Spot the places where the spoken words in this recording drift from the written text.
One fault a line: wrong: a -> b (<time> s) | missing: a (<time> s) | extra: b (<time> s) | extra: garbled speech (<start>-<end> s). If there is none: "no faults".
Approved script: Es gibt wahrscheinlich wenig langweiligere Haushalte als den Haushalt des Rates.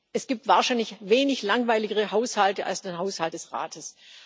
no faults